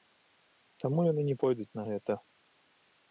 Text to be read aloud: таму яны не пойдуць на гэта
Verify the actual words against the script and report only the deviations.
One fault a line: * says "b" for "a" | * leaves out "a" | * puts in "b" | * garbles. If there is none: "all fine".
all fine